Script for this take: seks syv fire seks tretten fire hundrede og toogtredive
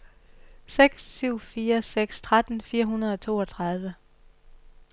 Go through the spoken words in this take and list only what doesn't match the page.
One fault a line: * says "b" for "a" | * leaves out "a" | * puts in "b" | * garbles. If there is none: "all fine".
all fine